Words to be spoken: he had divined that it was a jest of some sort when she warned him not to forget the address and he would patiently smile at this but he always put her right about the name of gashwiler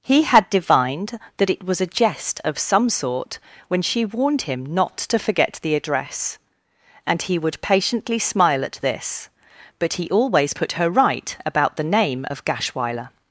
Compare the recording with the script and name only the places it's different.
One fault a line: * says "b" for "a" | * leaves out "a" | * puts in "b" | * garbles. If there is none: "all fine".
all fine